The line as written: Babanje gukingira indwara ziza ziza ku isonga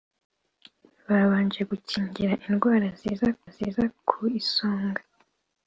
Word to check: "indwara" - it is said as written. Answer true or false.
true